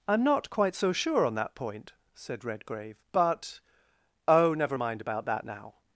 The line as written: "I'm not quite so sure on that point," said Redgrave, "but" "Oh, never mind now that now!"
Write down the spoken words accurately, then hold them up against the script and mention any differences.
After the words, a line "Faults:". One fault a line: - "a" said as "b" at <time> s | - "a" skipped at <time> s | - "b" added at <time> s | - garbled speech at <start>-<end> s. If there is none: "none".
"I'm not quite so sure on that point," said Redgrave, "but" "Oh, never mind about that now!"
Faults:
- "now" said as "about" at 5.0 s